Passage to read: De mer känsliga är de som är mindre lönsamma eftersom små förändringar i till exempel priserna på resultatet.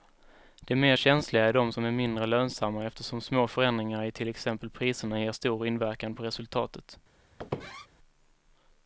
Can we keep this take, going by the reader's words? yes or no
no